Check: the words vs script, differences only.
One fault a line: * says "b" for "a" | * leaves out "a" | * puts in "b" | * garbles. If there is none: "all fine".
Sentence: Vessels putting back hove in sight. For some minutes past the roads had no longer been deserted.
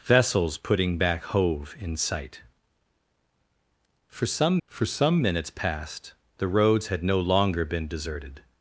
* puts in "for some"